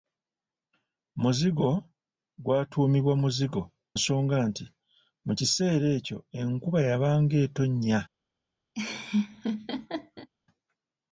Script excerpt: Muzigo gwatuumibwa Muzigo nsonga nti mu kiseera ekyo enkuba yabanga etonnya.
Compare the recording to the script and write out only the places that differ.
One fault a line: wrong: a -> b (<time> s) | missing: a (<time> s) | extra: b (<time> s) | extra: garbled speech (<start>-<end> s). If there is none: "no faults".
no faults